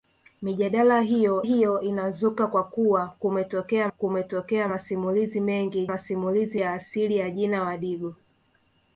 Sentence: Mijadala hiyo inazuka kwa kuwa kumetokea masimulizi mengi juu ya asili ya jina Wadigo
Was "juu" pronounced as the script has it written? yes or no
no